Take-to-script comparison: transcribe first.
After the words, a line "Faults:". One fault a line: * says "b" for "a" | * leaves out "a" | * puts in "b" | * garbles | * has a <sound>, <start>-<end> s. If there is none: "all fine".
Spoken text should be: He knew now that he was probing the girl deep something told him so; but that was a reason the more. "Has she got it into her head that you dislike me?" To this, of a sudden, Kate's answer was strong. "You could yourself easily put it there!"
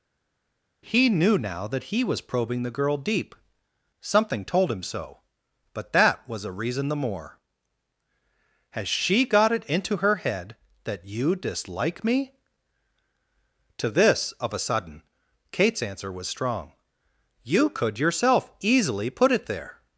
He knew now that he was probing the girl deep something told him so; but that was a reason the more. "Has she got it into her head that you dislike me?" To this, of a sudden, Kate's answer was strong. "You could yourself easily put it there!"
Faults:
all fine